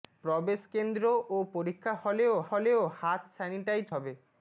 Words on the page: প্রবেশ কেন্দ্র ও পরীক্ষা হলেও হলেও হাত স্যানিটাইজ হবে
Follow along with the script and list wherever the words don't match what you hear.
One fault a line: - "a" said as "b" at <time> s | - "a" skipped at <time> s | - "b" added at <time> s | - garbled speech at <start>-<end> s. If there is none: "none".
none